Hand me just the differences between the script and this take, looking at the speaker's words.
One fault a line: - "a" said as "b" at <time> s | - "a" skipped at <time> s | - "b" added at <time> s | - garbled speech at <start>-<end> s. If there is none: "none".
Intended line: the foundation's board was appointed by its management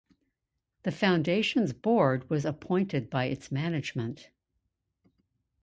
none